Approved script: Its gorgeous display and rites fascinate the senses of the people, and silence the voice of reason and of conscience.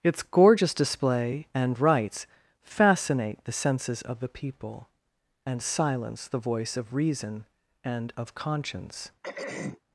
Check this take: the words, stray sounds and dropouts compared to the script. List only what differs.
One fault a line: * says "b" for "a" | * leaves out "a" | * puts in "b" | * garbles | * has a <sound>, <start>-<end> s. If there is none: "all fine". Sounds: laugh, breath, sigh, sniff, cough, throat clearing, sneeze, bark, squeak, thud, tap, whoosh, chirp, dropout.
* has a throat clearing, 9.2-9.8 s